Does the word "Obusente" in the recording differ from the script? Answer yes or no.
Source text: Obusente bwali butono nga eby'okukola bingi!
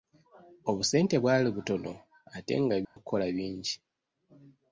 no